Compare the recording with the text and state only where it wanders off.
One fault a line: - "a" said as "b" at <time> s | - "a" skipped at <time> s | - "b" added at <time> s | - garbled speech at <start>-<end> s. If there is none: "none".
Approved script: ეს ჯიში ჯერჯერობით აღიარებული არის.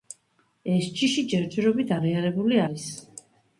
none